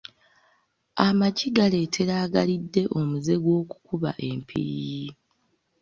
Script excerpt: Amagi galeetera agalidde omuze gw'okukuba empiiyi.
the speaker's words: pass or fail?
pass